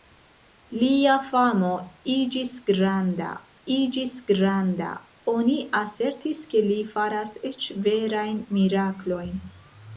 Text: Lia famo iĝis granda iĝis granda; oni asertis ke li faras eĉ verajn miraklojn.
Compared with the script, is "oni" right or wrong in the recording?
right